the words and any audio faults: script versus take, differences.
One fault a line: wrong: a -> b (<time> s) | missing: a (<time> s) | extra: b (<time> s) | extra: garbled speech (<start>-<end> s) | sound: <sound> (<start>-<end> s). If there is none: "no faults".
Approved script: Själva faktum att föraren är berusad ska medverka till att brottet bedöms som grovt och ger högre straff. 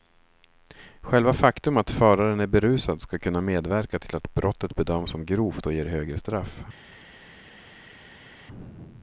extra: kunna (3.2 s)